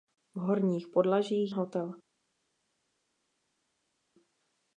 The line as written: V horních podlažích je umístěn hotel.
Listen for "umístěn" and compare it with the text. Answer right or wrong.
wrong